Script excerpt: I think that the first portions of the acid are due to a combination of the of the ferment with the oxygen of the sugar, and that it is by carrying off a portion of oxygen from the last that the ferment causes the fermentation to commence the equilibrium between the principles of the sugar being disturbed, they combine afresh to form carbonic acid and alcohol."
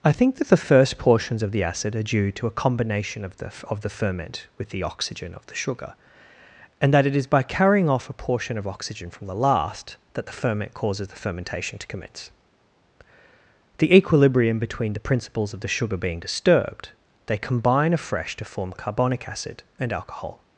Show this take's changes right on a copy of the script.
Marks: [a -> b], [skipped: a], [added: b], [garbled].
I think that the first portions of the acid are due to a combination of the of the ferment with the oxygen of the sugar, and that it is by carrying off a portion of oxygen from the last that the ferment causes the fermentation to commence the equilibrium between the principles of the sugar being disturbed, they combine afresh to form carbonic acid and alcohol."